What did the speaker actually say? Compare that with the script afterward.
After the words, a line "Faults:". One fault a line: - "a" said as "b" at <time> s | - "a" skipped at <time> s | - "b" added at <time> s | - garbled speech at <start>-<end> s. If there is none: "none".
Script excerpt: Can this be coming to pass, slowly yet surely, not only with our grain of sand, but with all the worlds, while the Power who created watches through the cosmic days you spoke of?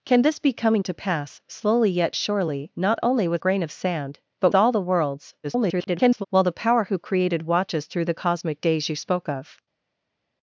Can this be coming to pass, slowly yet surely, not only with grain of sand, but all the worlds, [garbled] while the Power who created watches through the cosmic days you spoke of?
Faults:
- "our" skipped at 3.4 s
- "with" skipped at 4.5 s
- garbled speech at 5.4-6.3 s